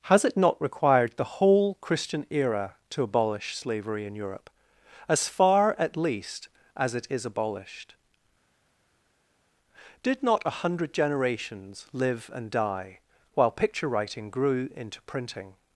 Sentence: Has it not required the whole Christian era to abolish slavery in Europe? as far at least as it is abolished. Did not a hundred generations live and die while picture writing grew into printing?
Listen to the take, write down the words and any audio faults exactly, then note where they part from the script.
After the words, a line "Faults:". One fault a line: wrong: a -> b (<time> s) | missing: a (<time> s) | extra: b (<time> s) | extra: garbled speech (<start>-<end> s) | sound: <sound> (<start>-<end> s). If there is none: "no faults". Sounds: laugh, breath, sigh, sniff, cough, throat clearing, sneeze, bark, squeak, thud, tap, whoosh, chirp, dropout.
Has it not required the whole Christian era to abolish slavery in Europe? as far at least as it is abolished. Did not a hundred generations live and die while picture writing grew into printing?
Faults:
no faults